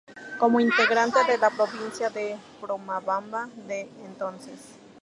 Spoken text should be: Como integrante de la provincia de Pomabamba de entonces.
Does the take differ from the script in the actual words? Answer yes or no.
no